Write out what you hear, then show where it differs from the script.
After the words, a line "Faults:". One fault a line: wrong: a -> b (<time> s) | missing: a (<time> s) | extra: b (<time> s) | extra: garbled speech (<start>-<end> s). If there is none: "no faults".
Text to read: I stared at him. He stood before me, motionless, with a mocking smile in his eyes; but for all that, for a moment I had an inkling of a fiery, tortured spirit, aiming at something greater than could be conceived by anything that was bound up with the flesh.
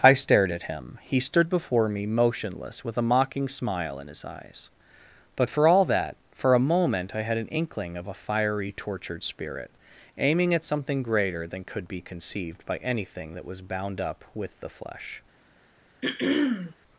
I stared at him. He stood before me, motionless, with a mocking smile in his eyes; but for all that, for a moment I had an inkling of a fiery, tortured spirit, aiming at something greater than could be conceived by anything that was bound up with the flesh.
Faults:
no faults